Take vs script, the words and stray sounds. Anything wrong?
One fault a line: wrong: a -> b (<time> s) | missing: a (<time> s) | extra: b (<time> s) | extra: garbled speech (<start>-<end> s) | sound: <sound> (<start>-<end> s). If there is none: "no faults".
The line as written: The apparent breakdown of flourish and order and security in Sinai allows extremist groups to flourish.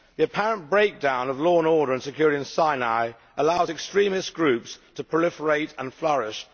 wrong: flourish -> law (1.4 s)
extra: proliferate and (5.0 s)